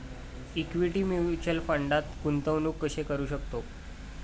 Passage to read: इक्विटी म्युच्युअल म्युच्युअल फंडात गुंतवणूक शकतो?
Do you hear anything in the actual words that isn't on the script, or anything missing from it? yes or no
yes